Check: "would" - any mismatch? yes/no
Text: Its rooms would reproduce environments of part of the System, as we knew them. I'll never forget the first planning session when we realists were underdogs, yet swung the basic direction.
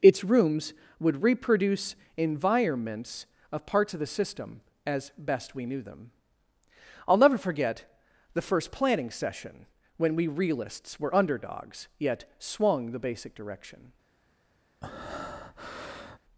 no